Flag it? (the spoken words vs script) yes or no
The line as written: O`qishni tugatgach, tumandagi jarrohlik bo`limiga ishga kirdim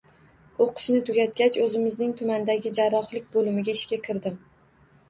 yes